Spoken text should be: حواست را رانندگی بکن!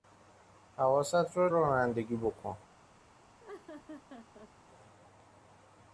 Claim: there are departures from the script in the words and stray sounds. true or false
true